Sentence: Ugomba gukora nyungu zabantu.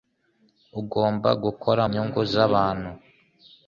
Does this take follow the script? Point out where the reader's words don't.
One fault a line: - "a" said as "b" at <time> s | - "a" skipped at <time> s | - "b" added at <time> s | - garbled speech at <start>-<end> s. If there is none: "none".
none